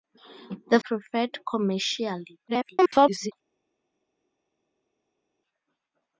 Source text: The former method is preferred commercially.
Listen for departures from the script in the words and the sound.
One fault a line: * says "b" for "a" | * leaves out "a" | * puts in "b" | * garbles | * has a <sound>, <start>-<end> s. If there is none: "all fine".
* leaves out "former method is"
* garbles